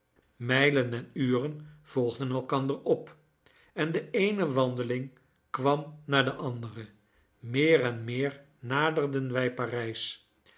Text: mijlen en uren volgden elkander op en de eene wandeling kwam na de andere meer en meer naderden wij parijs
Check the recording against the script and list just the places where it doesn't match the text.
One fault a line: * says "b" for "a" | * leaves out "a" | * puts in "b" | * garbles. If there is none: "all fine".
all fine